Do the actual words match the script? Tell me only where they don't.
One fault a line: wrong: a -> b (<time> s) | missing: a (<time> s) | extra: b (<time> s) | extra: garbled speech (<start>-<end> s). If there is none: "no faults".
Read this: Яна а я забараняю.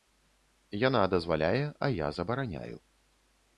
extra: дазваляе (1.1 s)